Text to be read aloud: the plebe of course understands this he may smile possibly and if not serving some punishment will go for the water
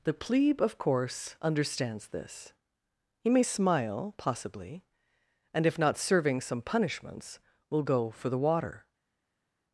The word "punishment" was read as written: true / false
false